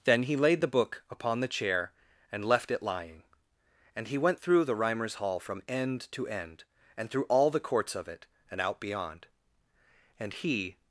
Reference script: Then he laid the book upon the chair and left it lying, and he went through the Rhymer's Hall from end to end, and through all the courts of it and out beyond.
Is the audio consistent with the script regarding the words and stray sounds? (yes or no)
no